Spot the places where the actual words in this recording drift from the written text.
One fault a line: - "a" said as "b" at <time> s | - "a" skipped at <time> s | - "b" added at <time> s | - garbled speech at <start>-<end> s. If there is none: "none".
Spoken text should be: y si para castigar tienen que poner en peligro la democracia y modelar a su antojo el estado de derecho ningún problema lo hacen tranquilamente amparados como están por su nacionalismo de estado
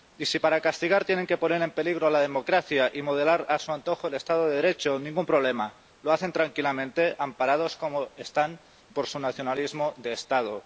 none